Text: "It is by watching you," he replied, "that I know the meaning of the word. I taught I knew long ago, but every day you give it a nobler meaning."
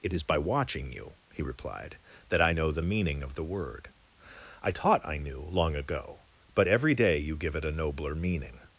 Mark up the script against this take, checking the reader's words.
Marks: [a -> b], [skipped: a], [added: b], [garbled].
"It is by watching you," he replied, "that I know the meaning of the word. I taught I knew long ago, but every day you give it a nobler meaning."